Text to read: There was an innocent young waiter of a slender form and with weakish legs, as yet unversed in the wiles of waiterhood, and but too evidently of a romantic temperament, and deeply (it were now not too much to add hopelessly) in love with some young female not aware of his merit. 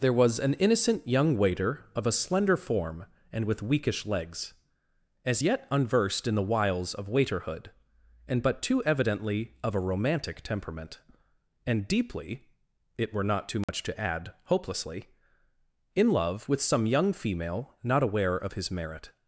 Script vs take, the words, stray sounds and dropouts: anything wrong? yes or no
yes